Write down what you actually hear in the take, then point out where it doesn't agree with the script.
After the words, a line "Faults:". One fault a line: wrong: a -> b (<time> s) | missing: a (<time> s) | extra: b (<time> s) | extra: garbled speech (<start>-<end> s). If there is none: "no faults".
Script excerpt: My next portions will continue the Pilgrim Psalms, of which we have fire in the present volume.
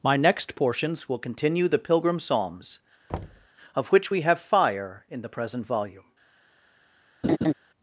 My next portions will continue the Pilgrim Psalms, of which we have fire in the present volume.
Faults:
no faults